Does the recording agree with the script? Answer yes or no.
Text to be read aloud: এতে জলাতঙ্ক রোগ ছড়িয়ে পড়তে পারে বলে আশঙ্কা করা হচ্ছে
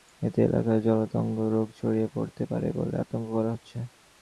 no